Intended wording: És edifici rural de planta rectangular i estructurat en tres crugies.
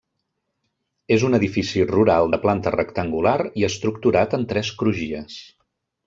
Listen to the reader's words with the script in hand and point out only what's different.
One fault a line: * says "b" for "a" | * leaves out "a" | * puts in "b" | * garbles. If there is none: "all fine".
* puts in "un"